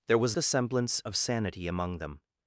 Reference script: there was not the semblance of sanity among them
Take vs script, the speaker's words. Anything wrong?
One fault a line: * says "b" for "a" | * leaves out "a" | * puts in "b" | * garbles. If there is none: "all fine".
* leaves out "not"